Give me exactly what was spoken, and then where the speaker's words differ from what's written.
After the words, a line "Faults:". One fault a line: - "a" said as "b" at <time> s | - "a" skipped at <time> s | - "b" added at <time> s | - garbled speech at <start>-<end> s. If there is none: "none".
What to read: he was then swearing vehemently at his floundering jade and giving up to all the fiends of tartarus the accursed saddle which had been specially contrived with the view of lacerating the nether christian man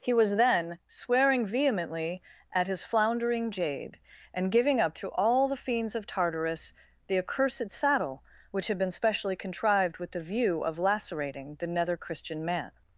he was then swearing vehemently at his floundering jade and giving up to all the fiends of tartarus the accursed saddle which had been specially contrived with the view of lacerating the nether christian man
Faults:
none